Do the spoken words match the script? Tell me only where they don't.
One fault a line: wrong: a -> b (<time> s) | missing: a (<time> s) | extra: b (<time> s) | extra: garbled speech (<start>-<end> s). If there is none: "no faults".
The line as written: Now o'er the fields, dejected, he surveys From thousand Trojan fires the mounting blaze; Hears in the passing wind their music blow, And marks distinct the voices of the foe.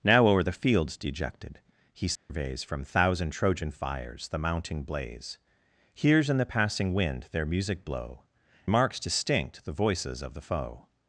missing: And (8.2 s)